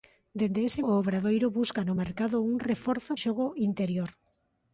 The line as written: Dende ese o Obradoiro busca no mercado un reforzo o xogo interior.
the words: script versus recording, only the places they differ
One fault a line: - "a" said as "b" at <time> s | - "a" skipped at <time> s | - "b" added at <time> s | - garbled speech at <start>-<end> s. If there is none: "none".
none